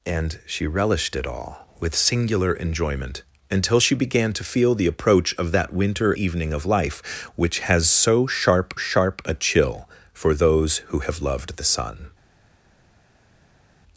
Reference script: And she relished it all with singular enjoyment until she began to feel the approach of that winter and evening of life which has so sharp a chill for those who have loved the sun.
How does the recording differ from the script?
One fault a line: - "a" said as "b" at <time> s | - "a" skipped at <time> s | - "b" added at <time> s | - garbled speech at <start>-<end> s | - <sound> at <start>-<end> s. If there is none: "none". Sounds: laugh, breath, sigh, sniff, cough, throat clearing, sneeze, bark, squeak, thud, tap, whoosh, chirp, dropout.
- "and" skipped at 6.1 s
- "sharp" added at 8.8 s